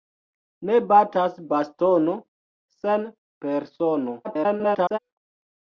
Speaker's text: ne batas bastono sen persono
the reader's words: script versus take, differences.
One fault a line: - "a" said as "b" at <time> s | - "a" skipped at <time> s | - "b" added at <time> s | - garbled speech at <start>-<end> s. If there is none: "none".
- garbled speech at 4.2-5.0 s